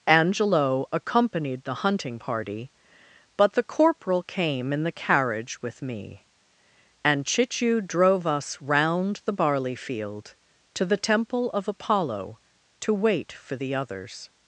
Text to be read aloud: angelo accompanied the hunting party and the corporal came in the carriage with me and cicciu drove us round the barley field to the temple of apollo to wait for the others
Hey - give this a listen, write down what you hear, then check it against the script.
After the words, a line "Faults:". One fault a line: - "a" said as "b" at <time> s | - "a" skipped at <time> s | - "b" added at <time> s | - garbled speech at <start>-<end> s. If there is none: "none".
angelo accompanied the hunting party but the corporal came in the carriage with me and cicciu drove us round the barley field to the temple of apollo to wait for the others
Faults:
- "and" said as "but" at 3.4 s